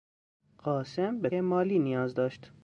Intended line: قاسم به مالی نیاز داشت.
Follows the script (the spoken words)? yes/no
yes